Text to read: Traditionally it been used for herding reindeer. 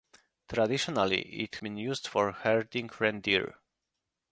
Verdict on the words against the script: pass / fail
pass